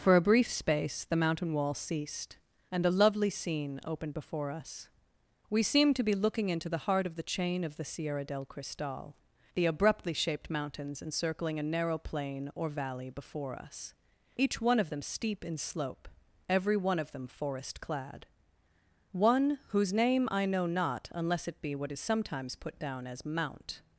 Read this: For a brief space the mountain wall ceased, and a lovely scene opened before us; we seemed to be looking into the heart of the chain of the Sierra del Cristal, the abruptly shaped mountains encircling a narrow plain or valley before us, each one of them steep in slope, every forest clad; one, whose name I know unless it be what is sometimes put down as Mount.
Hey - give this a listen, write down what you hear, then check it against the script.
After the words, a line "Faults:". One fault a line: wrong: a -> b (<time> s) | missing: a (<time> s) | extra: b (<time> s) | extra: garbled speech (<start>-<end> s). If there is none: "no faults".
For a brief space the mountain wall ceased, and a lovely scene opened before us; we seemed to be looking into the heart of the chain of the Sierra del Cristal, the abruptly shaped mountains encircling a narrow plain or valley before us, each one of them steep in slope, every one of them forest clad; one, whose name I know not unless it be what is sometimes put down as Mount.
Faults:
extra: one of them (16.8 s)
extra: not (20.7 s)